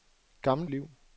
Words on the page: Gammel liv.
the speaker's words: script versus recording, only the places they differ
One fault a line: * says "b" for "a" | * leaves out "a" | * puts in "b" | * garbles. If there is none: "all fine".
all fine